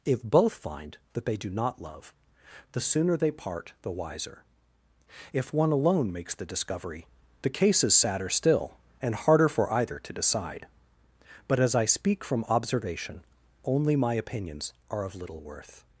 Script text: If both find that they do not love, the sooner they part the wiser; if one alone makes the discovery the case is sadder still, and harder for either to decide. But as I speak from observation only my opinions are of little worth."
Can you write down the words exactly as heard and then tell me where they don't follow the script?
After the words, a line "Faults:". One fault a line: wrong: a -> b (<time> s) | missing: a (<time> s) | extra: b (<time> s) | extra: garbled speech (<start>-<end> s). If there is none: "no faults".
If both find that they do not love, the sooner they part the wiser; if one alone makes the discovery the case is sadder still, and harder for either to decide. But as I speak from observation only my opinions are of little worth."
Faults:
no faults